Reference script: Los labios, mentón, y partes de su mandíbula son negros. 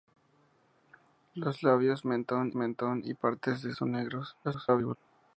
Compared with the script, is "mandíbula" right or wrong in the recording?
wrong